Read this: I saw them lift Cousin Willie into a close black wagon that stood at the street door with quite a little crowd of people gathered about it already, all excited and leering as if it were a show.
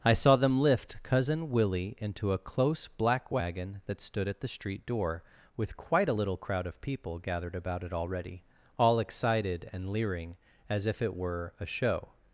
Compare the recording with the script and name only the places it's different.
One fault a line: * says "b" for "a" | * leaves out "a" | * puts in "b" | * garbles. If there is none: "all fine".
all fine